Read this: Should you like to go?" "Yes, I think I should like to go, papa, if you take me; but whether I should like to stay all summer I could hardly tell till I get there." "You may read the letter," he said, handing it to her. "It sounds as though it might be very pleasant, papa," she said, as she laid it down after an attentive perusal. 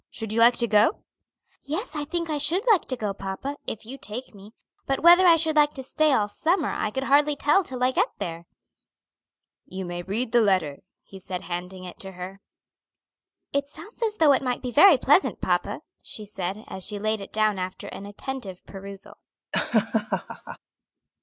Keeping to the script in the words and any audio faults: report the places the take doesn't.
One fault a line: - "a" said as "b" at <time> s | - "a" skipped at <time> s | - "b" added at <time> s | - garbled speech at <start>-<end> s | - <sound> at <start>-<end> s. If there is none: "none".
- laugh at 19.5-20.6 s